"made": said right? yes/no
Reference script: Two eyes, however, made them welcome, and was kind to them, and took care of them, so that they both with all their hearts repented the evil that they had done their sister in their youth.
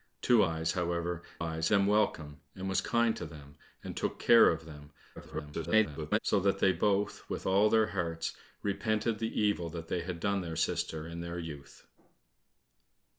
no